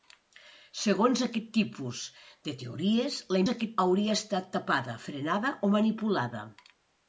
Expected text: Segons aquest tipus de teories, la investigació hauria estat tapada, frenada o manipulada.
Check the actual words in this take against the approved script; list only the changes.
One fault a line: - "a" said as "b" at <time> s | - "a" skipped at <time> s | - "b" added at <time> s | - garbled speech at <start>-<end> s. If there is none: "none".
- "investigació" said as "aquest" at 3.5 s